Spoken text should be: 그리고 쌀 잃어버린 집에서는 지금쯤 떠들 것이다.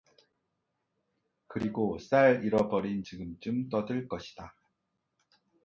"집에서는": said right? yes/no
no